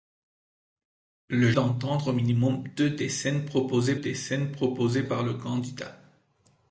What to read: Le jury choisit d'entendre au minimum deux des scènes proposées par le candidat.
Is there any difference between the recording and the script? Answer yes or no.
yes